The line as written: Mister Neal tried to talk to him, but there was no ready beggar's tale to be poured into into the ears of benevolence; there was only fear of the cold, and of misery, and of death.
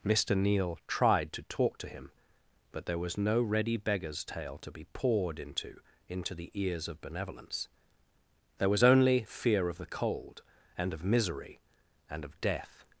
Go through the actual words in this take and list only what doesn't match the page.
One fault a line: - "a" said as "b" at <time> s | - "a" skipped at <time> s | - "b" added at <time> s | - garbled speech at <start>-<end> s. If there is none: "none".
none